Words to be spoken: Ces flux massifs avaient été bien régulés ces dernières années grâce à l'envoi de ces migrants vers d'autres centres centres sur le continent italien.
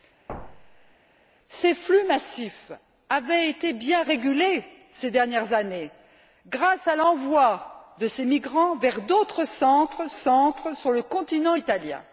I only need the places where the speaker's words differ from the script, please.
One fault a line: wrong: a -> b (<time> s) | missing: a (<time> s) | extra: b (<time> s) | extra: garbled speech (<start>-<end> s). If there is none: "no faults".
no faults